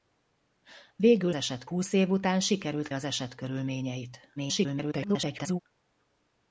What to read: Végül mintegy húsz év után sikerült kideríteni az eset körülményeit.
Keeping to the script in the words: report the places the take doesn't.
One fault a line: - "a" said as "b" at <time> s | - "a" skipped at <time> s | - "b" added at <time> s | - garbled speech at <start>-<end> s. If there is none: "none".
- "mintegy" said as "eset" at 1.3 s
- "kideríteni" skipped at 2.9 s
- garbled speech at 4.4-5.6 s